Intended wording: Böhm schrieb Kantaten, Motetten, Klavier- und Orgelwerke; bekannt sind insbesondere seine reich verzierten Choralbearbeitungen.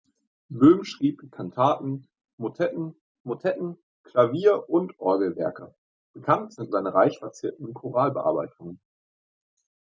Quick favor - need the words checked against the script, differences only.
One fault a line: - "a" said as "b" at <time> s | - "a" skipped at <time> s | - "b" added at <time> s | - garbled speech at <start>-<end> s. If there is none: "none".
- "Motetten" added at 3.2 s
- "insbesondere" skipped at 6.7 s